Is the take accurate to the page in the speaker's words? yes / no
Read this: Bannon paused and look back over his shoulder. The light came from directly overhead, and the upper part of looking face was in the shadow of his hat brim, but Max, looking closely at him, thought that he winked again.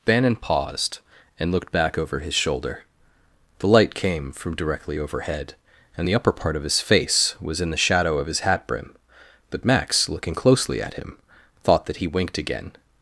no